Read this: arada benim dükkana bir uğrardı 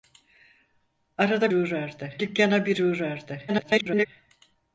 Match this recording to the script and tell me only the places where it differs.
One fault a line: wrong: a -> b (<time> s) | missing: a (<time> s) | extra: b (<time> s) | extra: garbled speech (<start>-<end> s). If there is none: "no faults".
wrong: benim -> uğrardı (1.5 s)
extra: garbled speech (3.5-4.1 s)